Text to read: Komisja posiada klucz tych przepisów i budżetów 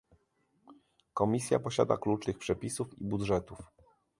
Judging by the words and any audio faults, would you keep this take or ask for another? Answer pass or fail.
pass